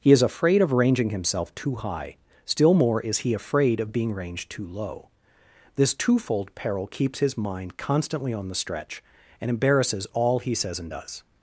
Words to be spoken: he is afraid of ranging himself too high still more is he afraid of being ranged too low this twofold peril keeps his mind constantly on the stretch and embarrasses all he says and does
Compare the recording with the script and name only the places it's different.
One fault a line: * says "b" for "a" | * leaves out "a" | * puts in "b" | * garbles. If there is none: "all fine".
all fine